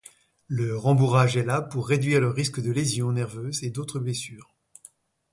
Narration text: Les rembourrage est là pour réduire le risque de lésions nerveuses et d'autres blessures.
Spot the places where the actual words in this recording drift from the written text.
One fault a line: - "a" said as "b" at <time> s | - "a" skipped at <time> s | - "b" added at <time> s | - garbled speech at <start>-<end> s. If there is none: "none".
- "Les" said as "Le" at 0.5 s